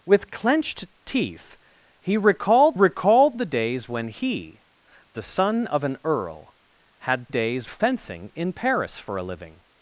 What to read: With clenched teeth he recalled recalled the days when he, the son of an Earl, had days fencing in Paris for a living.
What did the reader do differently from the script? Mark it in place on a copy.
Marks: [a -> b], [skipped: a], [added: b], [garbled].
With clenched teeth he recalled recalled the days when he, the son of an Earl, had days fencing in Paris for a living.